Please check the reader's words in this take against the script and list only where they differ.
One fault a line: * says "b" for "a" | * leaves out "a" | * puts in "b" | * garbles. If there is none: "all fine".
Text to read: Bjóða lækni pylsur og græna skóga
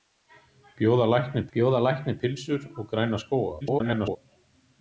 * puts in "bjóða lækni"
* garbles